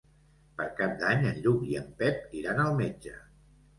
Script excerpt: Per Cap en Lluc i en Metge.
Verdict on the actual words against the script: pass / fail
fail